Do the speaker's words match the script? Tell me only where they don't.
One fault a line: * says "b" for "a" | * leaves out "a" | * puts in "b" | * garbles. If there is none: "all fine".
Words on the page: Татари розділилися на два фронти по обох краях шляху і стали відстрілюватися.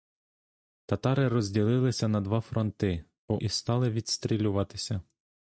* leaves out "обох краях шляху"